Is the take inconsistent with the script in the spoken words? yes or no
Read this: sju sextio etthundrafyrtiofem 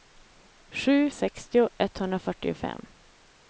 no